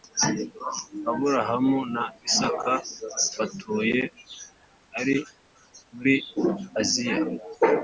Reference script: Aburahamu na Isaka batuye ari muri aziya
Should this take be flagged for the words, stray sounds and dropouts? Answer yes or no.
no